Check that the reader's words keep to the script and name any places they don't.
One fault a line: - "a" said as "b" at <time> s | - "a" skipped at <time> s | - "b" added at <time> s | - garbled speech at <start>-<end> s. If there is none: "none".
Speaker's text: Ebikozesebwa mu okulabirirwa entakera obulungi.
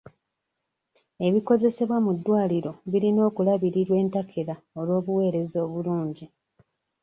- "ddwaliro birina" added at 2.2 s
- "olw'obuweereza" added at 4.8 s